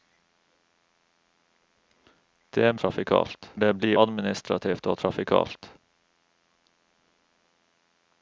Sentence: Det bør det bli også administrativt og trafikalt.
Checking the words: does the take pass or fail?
fail